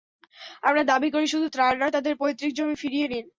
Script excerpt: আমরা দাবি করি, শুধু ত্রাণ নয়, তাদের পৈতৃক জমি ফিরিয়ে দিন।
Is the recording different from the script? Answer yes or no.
no